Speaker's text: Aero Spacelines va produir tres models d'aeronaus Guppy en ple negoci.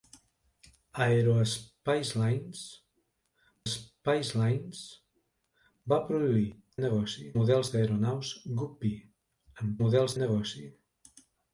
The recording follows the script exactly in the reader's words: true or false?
false